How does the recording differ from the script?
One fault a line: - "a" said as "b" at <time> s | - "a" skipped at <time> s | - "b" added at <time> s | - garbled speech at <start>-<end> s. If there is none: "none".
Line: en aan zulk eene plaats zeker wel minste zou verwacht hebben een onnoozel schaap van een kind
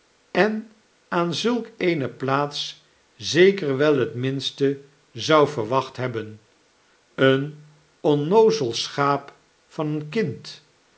- "het" added at 4.0 s